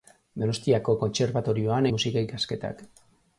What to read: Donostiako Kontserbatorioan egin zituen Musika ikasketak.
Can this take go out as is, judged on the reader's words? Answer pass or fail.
fail